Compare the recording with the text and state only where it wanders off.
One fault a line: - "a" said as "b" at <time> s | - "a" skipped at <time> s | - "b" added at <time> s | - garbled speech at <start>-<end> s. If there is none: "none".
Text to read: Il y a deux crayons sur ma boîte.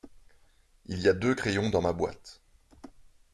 - "sur" said as "dans" at 1.7 s